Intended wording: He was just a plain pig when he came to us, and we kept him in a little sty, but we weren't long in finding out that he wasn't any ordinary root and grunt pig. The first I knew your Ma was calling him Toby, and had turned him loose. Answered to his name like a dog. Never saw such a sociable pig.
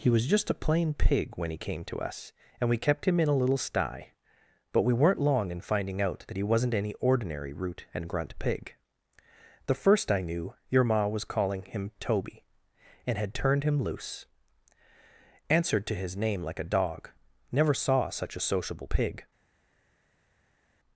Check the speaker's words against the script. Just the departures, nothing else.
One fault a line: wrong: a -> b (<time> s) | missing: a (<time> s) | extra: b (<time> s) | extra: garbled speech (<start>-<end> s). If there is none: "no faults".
no faults